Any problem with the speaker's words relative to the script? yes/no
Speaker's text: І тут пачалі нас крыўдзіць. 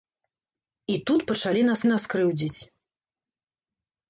yes